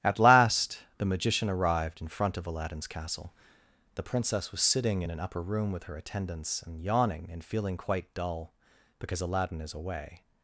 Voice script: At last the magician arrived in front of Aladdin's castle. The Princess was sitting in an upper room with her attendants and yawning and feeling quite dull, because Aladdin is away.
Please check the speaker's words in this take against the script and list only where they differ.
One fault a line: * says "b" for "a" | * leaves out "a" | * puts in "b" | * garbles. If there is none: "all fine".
all fine